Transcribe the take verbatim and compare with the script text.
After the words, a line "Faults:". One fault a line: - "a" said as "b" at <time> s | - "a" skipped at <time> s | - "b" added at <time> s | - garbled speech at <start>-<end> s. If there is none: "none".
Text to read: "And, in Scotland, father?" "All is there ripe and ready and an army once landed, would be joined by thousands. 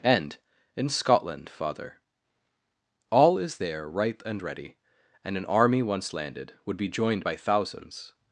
"And, in Scotland, father?" "All is there ripe and ready and an army once landed, would be joined by thousands.
Faults:
none